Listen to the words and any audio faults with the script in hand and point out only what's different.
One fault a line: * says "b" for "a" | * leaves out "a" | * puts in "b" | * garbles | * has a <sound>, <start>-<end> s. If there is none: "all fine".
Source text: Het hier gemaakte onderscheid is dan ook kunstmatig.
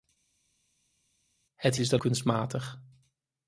* leaves out "hier gemaakte onderscheid"
* leaves out "ook"